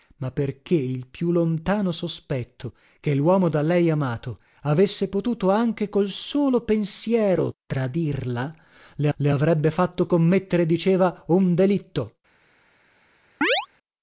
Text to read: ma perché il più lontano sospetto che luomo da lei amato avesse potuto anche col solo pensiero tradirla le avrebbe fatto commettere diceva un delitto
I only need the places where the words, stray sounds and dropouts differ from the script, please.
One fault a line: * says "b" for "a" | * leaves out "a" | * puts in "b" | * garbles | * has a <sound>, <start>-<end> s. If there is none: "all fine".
* puts in "le"
* has a chirp, 13.4-13.7 s